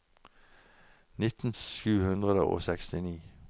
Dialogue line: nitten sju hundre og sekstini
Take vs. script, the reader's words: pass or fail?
pass